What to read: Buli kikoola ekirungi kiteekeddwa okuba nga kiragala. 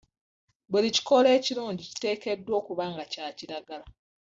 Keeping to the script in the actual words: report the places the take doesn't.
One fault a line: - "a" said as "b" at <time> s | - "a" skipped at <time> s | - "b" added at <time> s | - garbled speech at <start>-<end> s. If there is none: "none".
- "kya" added at 3.1 s